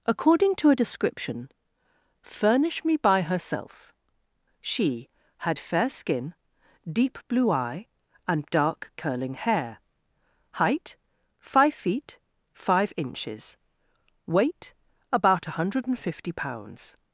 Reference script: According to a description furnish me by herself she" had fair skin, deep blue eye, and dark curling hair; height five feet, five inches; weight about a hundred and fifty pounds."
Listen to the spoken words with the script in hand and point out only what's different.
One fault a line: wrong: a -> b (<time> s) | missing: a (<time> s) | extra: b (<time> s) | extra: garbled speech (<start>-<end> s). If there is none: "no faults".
no faults